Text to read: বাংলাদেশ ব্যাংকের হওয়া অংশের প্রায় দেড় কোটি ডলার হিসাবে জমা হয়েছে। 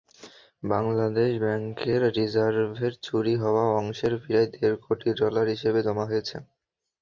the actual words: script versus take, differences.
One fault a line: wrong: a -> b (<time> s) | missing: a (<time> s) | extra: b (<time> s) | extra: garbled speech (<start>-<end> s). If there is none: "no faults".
extra: রিজার্ভের চুরি (2.2 s)